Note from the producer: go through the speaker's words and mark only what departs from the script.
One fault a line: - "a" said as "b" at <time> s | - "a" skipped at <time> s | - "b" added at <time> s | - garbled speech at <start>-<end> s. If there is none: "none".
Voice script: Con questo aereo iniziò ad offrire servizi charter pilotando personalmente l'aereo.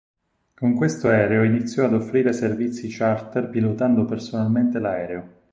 none